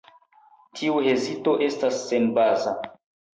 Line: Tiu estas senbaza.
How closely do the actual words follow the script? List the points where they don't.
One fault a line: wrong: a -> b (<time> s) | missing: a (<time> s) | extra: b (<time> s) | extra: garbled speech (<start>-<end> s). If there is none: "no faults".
extra: hezito (1.1 s)